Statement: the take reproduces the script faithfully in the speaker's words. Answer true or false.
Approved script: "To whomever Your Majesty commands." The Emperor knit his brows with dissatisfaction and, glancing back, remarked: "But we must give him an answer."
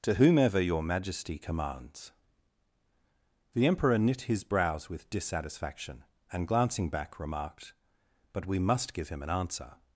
true